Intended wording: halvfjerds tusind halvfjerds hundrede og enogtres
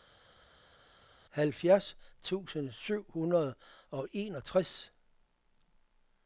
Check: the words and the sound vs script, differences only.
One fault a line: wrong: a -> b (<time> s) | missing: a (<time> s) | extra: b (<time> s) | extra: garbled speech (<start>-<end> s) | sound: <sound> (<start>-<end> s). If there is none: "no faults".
wrong: halvfjerds -> syv (2.7 s)